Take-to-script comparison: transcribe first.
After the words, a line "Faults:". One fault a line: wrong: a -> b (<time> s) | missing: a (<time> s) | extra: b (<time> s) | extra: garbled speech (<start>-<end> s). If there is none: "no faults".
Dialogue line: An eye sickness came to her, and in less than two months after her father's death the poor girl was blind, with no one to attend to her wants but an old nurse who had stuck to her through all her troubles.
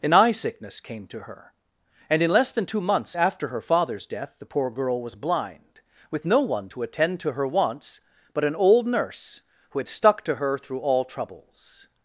An eye sickness came to her, and in less than two months after her father's death the poor girl was blind, with no one to attend to her wants but an old nurse who had stuck to her through all troubles.
Faults:
missing: her (11.1 s)